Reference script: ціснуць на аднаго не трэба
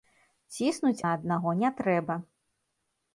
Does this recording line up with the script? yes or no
yes